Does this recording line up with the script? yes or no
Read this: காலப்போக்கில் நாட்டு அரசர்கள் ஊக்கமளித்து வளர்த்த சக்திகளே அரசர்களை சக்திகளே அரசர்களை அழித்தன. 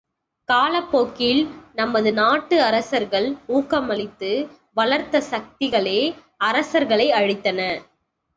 no